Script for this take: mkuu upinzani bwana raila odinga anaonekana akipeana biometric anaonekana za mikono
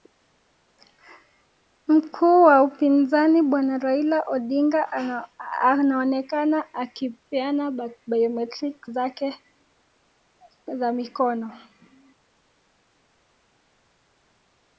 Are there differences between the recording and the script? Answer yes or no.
yes